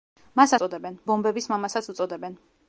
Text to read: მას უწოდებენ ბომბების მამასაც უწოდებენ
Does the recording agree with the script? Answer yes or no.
yes